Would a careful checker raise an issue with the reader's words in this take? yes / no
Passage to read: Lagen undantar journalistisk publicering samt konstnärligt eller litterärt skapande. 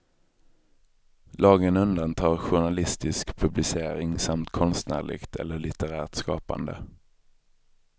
no